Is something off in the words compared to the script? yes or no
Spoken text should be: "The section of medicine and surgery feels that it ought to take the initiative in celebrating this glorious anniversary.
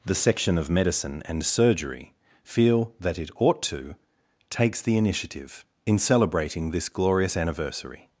yes